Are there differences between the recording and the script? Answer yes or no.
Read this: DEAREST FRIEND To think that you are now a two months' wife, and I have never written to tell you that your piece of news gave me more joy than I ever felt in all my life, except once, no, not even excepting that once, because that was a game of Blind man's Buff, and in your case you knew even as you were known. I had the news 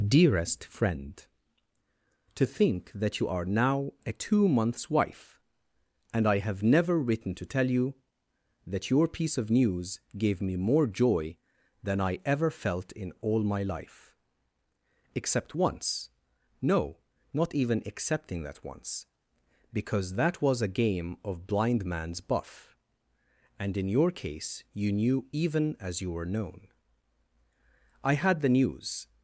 no